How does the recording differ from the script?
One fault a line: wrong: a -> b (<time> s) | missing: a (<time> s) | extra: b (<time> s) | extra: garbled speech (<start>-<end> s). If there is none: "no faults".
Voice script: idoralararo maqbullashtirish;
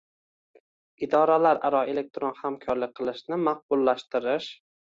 extra: elektron hamkorlik qilishni (1.9 s)